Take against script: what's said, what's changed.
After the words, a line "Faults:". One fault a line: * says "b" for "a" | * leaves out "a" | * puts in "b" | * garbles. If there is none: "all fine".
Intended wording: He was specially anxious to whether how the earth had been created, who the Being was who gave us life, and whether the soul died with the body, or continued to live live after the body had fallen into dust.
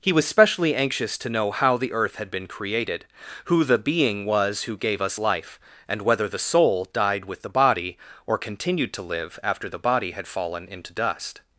He was specially anxious to know how the earth had been created, who the Being was who gave us life, and whether the soul died with the body, or continued to live after the body had fallen into dust.
Faults:
* says "know" for "whether"
* leaves out "live"